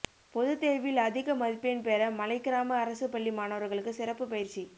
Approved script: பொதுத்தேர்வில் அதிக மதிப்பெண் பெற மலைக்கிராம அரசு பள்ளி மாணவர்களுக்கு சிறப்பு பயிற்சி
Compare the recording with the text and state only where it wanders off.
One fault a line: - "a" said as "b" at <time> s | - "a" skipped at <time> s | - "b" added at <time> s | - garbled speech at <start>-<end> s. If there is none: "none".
none